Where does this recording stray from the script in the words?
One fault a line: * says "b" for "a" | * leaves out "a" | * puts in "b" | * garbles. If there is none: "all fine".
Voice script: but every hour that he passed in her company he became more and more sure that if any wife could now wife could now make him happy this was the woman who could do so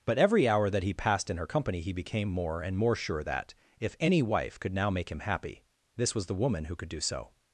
* leaves out "wife could now"